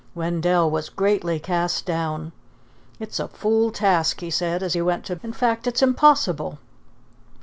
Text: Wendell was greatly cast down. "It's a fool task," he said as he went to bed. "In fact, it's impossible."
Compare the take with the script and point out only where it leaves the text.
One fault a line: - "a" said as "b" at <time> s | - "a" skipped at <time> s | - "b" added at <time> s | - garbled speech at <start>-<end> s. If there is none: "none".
- "bed" skipped at 5.2 s